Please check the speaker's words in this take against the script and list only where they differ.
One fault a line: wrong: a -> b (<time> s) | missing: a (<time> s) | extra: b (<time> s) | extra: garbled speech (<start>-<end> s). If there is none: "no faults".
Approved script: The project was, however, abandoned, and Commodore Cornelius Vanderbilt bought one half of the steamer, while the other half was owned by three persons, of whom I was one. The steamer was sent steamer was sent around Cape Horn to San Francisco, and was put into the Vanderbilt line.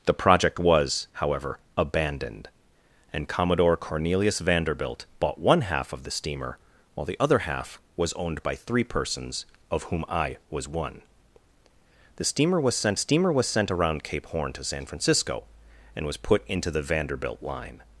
no faults